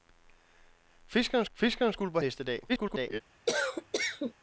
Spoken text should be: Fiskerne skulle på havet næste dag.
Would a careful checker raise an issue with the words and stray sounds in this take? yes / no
yes